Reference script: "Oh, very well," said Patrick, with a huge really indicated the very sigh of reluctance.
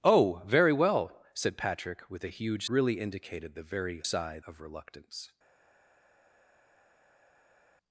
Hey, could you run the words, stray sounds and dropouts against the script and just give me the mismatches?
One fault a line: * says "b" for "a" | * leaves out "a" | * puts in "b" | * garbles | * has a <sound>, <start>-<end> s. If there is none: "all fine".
all fine